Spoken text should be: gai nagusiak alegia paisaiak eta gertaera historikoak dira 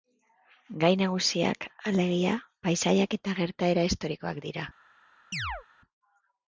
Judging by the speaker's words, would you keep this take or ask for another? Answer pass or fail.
pass